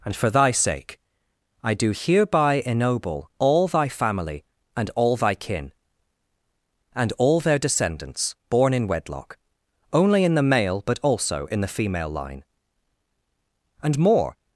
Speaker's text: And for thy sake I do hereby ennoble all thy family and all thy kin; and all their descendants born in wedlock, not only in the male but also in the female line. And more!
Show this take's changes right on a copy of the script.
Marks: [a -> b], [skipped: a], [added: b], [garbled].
And for thy sake I do hereby ennoble all thy family and all thy kin; and all their descendants born in wedlock, [skipped: not] only in the male but also in the female line. And more!